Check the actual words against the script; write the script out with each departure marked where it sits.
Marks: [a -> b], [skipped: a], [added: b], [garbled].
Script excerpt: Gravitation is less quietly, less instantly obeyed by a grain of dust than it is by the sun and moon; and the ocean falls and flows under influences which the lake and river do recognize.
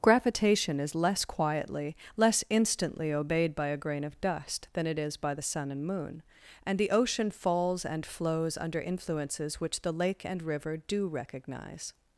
Gravitation is less quietly, less instantly obeyed by a grain of dust than it is by the sun and moon; and the ocean falls and flows under influences which the lake and river do recognize.